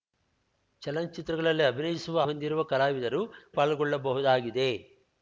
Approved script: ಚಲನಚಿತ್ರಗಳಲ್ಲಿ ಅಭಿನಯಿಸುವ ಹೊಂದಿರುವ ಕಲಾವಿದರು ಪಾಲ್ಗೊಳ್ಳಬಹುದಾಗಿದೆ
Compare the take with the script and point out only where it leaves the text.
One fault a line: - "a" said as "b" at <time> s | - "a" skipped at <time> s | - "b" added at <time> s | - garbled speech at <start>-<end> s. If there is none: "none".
none